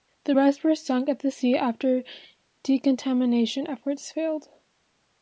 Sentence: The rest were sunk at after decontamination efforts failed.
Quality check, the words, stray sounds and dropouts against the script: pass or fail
fail